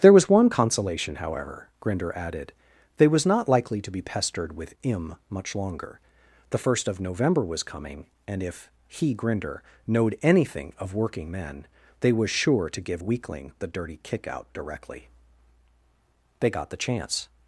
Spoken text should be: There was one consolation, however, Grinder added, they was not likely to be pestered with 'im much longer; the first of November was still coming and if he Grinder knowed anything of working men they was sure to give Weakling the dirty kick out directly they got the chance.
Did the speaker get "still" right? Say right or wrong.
wrong